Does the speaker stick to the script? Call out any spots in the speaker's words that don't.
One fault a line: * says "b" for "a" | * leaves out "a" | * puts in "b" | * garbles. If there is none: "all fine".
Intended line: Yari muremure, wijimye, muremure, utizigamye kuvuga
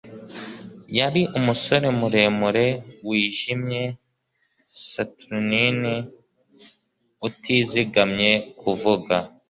* puts in "umusore"
* says "saturnine" for "muremure"